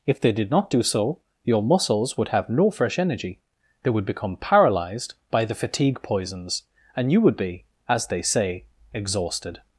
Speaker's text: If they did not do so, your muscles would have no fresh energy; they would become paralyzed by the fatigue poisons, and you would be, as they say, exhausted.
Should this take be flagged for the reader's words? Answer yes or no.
no